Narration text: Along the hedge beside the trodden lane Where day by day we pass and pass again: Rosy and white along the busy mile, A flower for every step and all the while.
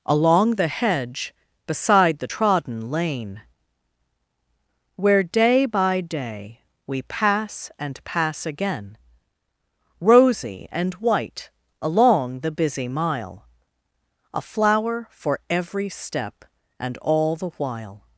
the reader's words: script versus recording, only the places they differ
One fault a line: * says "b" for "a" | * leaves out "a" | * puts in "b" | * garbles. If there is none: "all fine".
all fine